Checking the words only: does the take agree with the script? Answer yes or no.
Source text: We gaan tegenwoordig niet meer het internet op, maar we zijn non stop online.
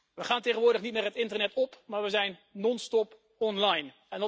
yes